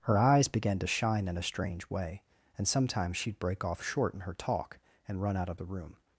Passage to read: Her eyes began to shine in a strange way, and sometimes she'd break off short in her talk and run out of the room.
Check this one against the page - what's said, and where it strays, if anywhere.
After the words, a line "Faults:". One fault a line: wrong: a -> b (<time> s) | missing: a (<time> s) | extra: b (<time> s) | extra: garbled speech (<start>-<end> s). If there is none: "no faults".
Her eyes began to shine in a strange way, and sometimes she'd break off short in her talk and run out of the room.
Faults:
no faults